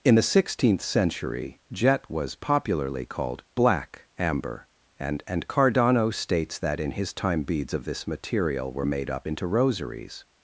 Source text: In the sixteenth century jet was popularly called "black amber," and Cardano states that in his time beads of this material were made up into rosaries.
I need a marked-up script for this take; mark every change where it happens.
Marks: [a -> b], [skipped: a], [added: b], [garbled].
In the sixteenth century jet was popularly called "black amber," and [added: and] Cardano states that in his time beads of this material were made up into rosaries.